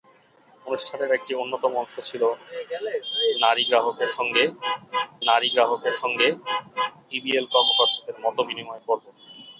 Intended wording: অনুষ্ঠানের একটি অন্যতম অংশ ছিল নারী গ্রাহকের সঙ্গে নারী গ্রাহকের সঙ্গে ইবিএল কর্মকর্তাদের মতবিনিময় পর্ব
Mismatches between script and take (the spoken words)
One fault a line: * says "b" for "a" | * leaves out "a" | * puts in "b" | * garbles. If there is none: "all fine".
all fine